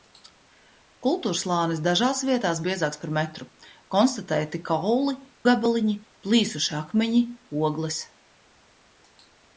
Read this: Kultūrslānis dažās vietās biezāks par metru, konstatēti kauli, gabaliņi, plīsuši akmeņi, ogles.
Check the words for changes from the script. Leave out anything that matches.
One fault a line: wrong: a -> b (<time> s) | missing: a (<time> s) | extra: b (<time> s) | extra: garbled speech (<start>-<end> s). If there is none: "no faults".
no faults